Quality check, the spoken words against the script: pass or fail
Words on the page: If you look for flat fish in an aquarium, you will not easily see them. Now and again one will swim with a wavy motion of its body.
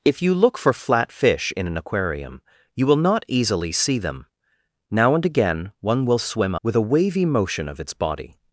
pass